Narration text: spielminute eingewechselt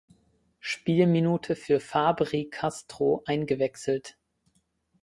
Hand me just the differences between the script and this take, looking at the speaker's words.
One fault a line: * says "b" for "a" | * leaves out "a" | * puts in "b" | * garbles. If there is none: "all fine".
* puts in "für fabry castro"